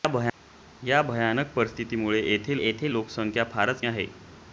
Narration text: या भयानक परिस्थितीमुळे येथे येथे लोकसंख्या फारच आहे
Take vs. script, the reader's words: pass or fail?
pass